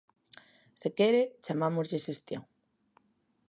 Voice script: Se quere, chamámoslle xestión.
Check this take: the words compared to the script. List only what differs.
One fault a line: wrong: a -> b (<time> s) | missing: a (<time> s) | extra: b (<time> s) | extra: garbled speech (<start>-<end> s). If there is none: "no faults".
no faults